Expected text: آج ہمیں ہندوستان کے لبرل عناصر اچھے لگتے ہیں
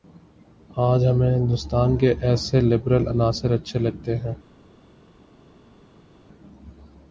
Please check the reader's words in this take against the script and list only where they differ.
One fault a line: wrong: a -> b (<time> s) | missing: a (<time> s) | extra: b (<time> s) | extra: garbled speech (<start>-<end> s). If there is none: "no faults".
extra: ایسے (2.2 s)